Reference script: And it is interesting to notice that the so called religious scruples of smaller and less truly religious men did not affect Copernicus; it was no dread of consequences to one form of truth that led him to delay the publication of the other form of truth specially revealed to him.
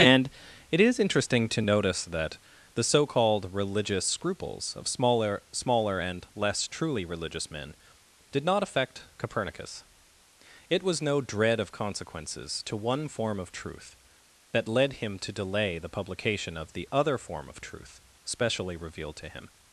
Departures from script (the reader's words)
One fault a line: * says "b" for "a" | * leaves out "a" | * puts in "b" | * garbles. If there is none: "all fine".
* puts in "smaller"